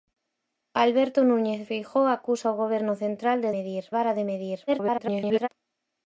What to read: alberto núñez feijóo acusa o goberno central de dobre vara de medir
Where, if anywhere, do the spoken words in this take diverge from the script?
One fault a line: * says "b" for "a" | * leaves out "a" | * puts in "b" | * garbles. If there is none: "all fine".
* says "medir" for "dobre"
* garbles